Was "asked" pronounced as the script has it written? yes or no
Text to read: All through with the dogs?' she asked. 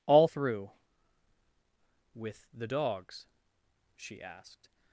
yes